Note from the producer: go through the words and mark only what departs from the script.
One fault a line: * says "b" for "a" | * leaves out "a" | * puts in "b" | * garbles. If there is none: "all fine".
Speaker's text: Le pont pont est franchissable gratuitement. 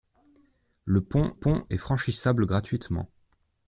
all fine